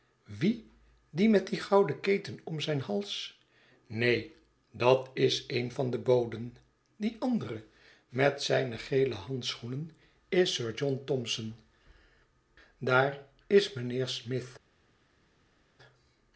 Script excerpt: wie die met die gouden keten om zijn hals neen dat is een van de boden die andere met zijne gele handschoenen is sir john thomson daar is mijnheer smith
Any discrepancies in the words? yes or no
no